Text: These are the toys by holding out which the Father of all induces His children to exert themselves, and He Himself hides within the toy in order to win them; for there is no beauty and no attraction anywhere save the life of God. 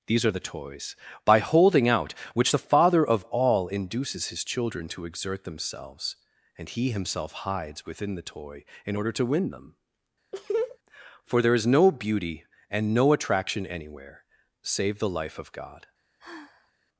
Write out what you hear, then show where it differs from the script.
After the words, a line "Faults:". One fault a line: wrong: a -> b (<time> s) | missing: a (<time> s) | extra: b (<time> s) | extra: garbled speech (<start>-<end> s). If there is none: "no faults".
These are the toys by holding out which the Father of all induces His children to exert themselves, and He Himself hides within the toy in order to win them; for there is no beauty and no attraction anywhere save the life of God.
Faults:
no faults